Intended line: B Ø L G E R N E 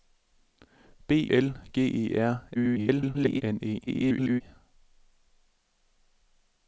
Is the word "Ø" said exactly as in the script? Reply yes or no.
no